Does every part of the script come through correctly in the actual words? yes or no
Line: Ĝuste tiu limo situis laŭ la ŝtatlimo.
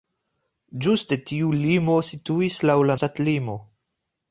yes